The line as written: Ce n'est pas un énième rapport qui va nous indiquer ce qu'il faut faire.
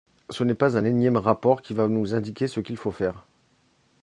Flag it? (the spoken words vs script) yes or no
no